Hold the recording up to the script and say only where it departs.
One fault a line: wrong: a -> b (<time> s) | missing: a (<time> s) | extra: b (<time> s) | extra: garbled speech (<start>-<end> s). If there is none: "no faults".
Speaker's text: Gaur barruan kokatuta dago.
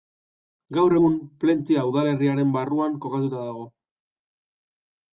extra: egun Plentzia udalerriaren (0.9 s)